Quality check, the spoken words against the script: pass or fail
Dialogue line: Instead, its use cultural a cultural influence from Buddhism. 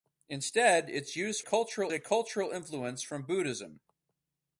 pass